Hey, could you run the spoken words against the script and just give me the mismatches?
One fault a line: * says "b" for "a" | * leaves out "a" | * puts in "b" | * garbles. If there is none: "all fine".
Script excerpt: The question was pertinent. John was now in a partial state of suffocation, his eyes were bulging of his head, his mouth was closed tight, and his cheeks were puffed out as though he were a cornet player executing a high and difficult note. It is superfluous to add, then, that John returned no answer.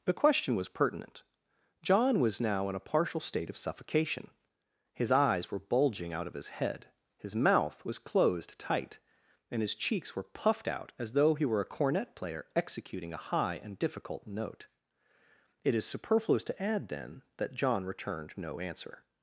* puts in "out"